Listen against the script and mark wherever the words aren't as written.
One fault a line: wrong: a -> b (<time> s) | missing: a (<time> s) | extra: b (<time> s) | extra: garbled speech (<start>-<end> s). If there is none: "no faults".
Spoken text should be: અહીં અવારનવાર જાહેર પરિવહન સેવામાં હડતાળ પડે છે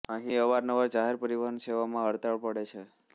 no faults